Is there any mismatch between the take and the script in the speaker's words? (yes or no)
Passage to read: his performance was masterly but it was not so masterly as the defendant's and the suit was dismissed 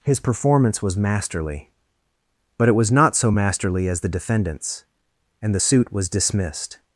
no